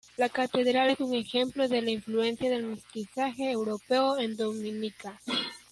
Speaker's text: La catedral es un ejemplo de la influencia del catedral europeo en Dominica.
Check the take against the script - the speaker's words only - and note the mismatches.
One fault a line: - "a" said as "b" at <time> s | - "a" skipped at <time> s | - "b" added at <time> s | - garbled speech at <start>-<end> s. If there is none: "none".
- "catedral" said as "mestizaje" at 2.7 s